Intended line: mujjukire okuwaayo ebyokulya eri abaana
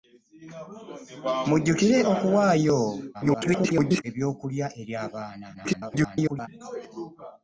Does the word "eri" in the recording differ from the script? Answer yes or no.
no